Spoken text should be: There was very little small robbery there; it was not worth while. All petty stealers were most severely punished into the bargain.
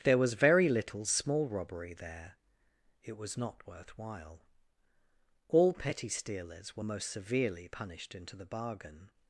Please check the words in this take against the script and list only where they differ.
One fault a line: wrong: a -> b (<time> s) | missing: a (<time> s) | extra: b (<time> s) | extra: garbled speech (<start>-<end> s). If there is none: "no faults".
no faults